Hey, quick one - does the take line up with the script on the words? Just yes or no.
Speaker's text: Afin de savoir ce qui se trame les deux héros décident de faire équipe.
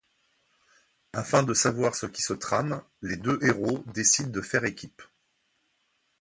yes